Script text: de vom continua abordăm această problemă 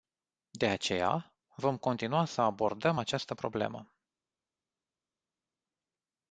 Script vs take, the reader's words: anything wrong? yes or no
yes